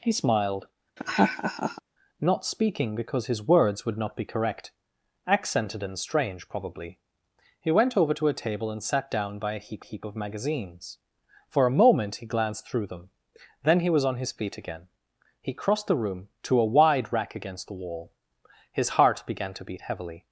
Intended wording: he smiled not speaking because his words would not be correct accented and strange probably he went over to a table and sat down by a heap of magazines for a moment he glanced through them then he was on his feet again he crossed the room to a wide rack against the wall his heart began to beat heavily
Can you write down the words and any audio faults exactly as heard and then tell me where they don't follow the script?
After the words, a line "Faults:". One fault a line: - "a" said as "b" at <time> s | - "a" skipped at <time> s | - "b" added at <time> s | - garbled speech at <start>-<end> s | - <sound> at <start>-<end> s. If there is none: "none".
he smiled not speaking because his words would not be correct accented and strange probably he went over to a table and sat down by a heap heap of magazines for a moment he glanced through them then he was on his feet again he crossed the room to a wide rack against the wall his heart began to beat heavily
Faults:
- laugh at 1.0-1.8 s
- "heap" added at 9.8 s